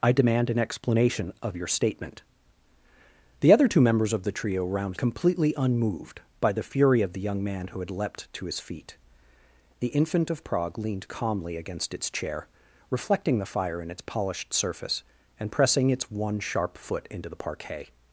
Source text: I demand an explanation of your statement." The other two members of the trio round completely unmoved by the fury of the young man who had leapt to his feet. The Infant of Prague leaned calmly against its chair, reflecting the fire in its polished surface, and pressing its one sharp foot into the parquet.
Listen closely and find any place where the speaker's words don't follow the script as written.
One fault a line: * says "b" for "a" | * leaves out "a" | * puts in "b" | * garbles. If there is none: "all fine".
all fine